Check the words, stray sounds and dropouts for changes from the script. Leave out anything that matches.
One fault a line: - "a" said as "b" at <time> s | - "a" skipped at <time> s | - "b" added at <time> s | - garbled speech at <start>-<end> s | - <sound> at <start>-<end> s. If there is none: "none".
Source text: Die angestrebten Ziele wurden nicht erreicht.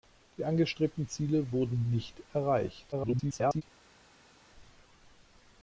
- garbled speech at 2.9-3.6 s